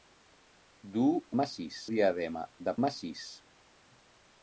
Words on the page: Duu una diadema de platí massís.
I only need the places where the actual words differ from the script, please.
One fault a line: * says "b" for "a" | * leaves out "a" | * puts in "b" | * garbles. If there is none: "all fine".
* says "massís" for "una"
* leaves out "platí"